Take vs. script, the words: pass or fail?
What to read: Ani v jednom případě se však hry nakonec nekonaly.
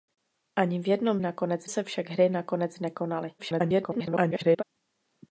fail